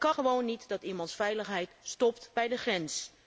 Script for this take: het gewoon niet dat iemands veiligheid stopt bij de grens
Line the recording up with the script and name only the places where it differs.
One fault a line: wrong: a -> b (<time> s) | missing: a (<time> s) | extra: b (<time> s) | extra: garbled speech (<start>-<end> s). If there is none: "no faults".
no faults